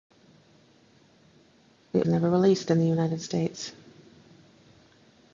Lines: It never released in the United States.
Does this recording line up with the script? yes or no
yes